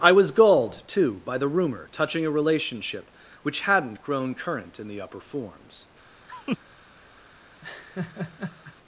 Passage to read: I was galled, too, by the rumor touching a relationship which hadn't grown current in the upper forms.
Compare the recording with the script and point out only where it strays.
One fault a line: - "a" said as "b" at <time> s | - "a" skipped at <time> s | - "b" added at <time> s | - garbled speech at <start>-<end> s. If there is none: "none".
none